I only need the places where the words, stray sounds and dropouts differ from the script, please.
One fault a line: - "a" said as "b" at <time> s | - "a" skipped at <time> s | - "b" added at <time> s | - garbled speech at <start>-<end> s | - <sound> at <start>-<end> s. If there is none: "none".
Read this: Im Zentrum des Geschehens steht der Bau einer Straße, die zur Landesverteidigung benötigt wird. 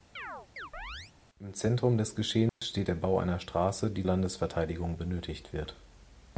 - chirp at 0.2-1.1 s
- dropout at 2.5-2.6 s
- "zur" skipped at 4.1 s